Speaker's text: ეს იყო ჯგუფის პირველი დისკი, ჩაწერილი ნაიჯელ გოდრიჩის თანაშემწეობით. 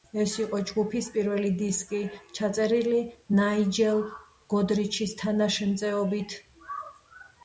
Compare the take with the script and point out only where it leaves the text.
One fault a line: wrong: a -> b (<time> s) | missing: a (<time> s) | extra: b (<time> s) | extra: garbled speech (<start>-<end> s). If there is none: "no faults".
no faults